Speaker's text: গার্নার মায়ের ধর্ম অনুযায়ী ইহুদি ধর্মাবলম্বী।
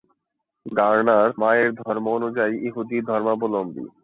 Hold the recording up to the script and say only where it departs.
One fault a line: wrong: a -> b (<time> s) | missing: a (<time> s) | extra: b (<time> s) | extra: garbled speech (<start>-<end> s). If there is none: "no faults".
no faults